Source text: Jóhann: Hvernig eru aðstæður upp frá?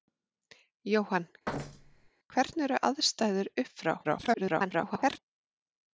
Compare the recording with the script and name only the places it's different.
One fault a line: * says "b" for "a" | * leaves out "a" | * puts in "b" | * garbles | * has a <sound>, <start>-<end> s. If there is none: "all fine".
* has a thud, 1.5-2.1 s
* garbles